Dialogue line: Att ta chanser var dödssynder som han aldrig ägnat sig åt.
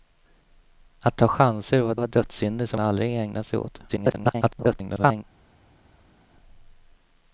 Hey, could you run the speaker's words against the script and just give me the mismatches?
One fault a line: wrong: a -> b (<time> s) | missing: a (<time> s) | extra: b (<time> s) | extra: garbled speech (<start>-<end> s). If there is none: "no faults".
extra: var (1.9 s)
missing: han (2.8 s)
extra: garbled speech (3.9-5.2 s)